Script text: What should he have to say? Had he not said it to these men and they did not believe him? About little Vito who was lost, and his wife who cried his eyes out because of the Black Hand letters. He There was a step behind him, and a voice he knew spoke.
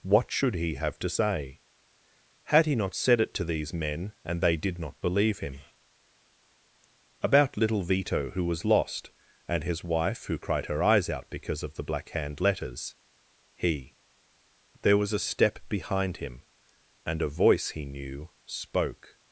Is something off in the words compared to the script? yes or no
yes